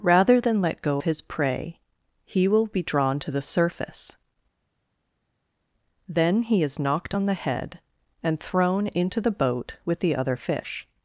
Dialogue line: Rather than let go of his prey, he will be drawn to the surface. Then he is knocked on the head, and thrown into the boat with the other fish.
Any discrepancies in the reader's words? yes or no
yes